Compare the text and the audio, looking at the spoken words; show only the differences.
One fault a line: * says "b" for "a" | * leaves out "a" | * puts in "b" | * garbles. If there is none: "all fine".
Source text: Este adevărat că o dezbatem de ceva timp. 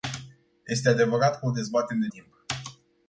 * leaves out "ceva"